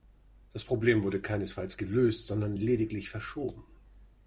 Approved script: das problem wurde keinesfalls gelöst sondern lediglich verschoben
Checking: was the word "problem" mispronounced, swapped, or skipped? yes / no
no